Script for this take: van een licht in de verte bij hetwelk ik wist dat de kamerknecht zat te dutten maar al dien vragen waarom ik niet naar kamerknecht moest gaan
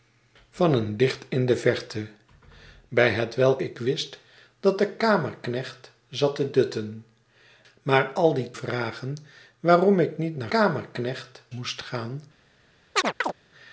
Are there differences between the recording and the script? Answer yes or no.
no